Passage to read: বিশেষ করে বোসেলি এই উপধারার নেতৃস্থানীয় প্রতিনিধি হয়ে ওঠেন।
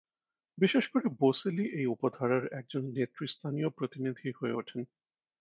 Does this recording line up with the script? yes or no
no